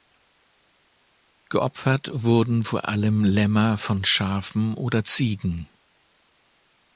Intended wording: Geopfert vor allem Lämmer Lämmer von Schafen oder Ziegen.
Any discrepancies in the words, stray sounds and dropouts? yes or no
yes